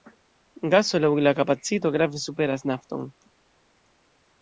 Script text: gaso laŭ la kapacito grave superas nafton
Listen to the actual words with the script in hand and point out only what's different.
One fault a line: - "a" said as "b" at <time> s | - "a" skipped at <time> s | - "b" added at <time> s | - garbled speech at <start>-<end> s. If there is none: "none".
none